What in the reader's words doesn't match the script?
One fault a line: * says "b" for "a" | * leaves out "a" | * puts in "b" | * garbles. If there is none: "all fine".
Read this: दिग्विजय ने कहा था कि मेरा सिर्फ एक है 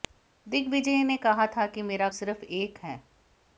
all fine